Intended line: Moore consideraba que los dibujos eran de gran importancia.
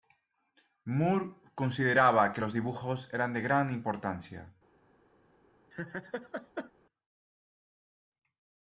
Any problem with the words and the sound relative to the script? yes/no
yes